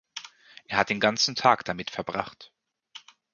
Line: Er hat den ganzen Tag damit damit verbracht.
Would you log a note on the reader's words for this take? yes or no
yes